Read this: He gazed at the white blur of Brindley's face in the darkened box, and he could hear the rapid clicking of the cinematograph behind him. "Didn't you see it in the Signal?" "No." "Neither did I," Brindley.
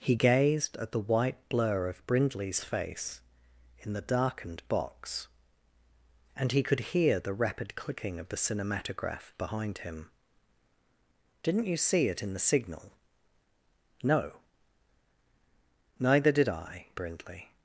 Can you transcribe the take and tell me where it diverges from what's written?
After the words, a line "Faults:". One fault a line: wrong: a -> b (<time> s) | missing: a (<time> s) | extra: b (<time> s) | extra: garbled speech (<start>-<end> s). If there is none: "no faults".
He gazed at the white blur of Brindley's face in the darkened box, and he could hear the rapid clicking of the cinematograph behind him. "Didn't you see it in the Signal?" "No." "Neither did I," Brindley.
Faults:
no faults